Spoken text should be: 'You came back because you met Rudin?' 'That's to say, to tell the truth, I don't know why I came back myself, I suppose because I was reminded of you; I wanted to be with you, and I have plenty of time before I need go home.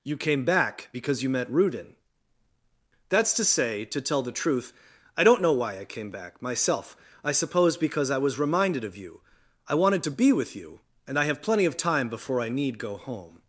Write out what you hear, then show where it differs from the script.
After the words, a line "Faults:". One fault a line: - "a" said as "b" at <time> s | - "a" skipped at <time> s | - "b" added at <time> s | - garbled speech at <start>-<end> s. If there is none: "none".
'You came back because you met Rudin?' 'That's to say, to tell the truth, I don't know why I came back myself, I suppose because I was reminded of you; I wanted to be with you, and I have plenty of time before I need go home.
Faults:
none